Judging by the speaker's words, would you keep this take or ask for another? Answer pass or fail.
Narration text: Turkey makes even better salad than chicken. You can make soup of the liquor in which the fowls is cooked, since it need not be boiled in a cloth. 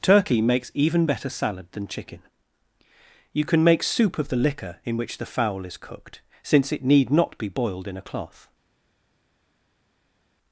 fail